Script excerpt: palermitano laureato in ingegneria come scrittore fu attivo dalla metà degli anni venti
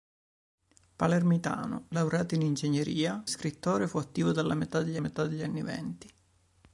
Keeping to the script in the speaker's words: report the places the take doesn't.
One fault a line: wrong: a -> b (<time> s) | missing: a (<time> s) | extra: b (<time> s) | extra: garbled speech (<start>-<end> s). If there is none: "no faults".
missing: come (3.2 s)
extra: metà degli (5.0 s)